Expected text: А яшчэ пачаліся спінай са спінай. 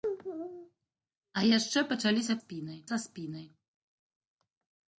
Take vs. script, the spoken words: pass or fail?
pass